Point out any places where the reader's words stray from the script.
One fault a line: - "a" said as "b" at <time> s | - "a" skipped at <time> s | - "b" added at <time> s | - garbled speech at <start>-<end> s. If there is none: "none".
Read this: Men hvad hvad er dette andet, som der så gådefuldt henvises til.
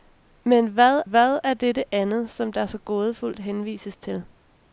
none